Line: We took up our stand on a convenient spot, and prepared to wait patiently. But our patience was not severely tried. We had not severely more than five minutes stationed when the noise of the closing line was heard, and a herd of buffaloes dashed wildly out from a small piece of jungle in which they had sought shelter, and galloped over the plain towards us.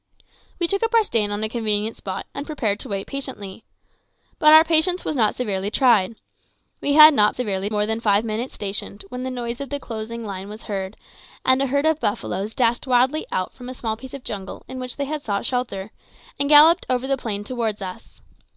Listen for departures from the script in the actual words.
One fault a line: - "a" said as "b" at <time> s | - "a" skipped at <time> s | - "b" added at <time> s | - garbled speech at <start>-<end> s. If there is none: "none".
none